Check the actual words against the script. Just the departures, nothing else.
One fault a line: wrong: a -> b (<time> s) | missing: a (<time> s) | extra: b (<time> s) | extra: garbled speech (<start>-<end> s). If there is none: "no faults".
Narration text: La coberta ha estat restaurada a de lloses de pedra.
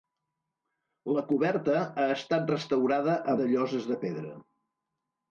no faults